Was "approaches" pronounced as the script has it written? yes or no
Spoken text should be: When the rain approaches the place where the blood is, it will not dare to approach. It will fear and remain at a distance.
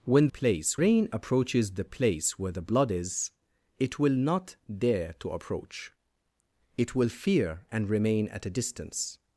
yes